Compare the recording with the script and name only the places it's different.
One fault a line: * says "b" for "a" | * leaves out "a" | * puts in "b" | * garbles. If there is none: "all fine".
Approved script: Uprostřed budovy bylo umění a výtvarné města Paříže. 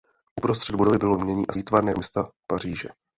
all fine